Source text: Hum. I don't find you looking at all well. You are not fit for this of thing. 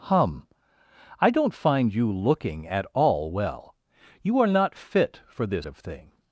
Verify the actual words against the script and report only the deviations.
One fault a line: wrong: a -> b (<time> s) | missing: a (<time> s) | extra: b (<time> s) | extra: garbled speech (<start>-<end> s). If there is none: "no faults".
no faults